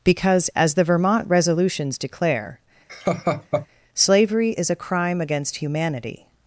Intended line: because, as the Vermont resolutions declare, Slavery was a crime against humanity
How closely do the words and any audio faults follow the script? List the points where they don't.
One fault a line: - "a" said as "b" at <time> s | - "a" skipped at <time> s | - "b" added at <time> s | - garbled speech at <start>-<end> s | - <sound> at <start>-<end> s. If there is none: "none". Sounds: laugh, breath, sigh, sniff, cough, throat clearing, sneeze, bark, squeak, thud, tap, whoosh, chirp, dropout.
- laugh at 2.9-3.7 s
- "was" said as "is" at 4.6 s